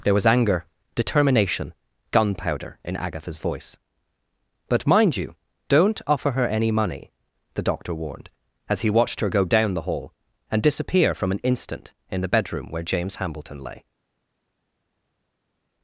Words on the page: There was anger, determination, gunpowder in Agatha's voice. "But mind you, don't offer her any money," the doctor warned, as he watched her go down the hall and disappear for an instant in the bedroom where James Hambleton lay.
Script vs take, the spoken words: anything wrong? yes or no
yes